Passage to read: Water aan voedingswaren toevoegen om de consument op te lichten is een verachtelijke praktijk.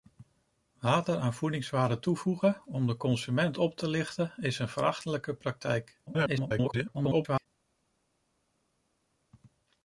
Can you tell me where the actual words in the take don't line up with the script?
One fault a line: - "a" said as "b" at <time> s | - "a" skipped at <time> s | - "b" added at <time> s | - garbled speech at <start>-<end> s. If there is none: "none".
- garbled speech at 6.1-7.5 s